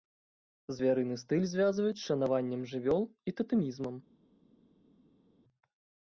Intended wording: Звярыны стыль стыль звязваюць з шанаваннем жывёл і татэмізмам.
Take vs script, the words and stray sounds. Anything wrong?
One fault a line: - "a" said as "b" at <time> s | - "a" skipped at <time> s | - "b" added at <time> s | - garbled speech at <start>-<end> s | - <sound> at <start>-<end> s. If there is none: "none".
- "стыль" skipped at 1.4 s